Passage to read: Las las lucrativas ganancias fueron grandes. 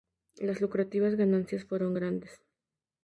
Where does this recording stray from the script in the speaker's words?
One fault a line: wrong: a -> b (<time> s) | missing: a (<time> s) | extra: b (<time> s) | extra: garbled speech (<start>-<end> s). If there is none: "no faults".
missing: las (0.6 s)